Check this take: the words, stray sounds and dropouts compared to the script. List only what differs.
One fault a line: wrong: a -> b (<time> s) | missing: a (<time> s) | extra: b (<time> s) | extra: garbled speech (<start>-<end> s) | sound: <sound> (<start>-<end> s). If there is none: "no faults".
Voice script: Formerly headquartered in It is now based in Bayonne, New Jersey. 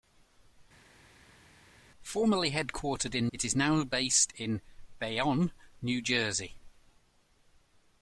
no faults